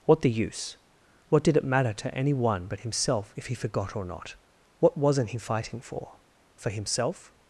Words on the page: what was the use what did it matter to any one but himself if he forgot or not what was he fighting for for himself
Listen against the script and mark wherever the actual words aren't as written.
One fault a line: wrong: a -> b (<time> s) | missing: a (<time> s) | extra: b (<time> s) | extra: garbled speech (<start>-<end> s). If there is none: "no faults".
missing: was (0.2 s)
wrong: was -> wasn't (5.0 s)